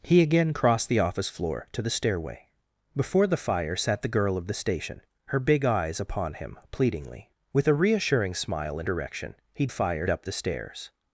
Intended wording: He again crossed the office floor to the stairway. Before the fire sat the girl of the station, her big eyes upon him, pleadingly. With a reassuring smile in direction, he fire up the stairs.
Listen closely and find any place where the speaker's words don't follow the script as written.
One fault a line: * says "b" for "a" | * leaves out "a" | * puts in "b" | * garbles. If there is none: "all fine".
all fine